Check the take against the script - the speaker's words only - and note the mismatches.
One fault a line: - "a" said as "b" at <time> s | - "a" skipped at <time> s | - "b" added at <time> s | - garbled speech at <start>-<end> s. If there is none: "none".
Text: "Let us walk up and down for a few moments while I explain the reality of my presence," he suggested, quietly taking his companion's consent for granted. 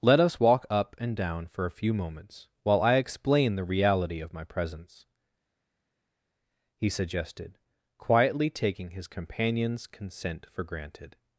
none